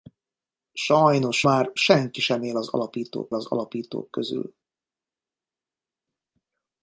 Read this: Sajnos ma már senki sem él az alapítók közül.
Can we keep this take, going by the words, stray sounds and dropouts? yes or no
no